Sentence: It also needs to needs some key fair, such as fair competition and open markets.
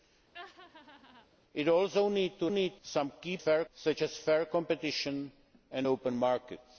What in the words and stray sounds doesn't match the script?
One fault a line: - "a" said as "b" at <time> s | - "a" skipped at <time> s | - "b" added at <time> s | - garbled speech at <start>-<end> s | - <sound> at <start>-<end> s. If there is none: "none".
- laugh at 0.3-1.3 s